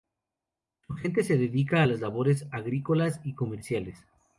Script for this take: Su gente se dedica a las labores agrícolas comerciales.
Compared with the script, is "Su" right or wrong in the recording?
right